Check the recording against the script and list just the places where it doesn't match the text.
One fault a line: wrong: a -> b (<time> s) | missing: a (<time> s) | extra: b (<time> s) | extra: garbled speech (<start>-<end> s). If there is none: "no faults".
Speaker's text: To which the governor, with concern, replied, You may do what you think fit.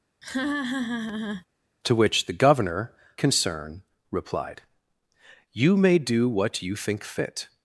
missing: with (2.9 s)